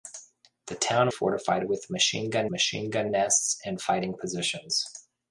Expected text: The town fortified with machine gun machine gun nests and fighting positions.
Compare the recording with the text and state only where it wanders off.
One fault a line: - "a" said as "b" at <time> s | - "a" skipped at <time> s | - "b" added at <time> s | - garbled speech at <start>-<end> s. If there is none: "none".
none